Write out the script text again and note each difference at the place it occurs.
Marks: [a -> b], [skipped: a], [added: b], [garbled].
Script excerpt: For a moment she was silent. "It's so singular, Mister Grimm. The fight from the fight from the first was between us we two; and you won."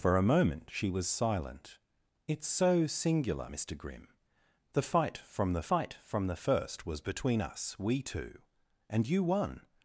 For a moment she was silent. "It's so singular, Mister Grimm. The fight from the fight from the first was between us we two; and you won."